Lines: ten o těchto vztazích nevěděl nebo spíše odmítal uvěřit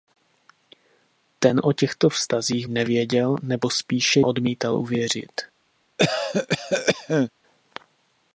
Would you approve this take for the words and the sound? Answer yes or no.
no